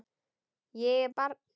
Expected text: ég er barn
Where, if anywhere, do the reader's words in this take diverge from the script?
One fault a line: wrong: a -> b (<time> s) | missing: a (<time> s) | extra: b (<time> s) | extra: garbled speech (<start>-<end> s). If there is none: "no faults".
no faults